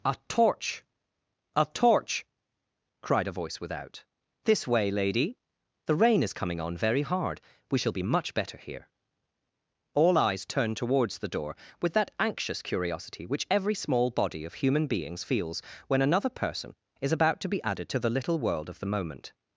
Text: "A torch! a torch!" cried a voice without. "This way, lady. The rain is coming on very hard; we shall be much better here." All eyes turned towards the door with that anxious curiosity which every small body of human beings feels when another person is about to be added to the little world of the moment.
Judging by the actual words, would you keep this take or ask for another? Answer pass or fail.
pass